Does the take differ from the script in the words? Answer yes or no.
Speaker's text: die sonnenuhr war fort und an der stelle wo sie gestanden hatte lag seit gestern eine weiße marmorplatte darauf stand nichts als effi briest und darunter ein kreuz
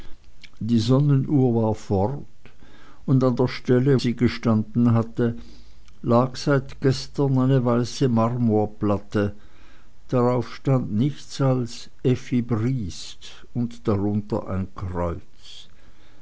yes